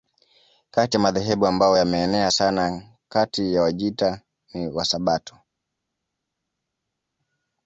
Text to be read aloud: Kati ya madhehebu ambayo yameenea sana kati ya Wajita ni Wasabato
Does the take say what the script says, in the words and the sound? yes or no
yes